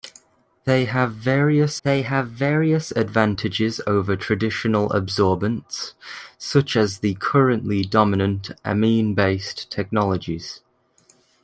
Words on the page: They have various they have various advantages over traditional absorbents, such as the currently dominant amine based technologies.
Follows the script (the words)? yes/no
yes